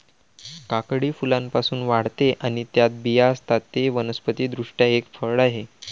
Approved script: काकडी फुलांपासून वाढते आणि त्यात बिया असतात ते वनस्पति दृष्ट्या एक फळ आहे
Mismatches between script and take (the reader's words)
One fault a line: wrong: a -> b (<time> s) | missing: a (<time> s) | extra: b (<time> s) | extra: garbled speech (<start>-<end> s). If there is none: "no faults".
no faults